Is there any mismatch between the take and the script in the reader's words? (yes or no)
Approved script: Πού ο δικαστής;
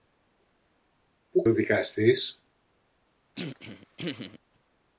no